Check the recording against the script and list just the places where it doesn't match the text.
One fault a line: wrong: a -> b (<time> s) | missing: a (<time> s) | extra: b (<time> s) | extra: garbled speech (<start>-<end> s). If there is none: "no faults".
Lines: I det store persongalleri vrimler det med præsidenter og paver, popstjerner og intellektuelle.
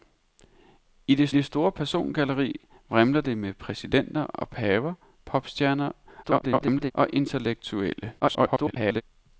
extra: det (1.3 s)
extra: garbled speech (6.2-6.9 s)
extra: garbled speech (8.2-9.0 s)